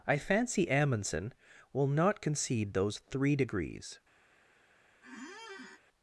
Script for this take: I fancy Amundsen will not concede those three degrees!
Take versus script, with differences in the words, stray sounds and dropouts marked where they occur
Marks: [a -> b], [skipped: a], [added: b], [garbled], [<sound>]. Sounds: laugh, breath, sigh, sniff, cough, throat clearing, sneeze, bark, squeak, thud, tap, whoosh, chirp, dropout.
I fancy Amundsen will not concede those three degrees! [squeak]